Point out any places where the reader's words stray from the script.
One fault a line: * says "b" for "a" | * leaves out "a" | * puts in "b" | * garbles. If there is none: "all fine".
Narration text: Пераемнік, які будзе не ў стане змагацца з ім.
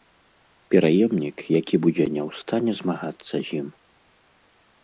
all fine